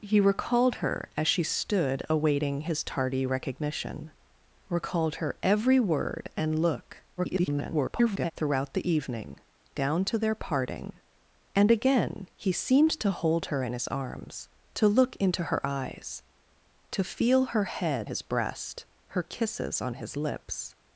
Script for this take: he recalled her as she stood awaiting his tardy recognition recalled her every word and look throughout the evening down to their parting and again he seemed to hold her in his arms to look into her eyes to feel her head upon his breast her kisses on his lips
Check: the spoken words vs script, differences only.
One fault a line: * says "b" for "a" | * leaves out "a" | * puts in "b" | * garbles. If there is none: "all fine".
* garbles
* leaves out "upon"